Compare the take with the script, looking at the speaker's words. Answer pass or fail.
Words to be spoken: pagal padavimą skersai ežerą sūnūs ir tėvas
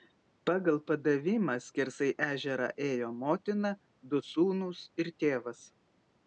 fail